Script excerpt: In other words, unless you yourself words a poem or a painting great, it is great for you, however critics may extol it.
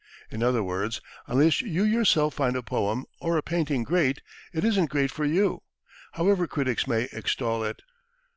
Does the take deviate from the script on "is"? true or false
true